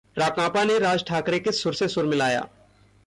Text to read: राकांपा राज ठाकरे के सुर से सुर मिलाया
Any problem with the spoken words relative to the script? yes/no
yes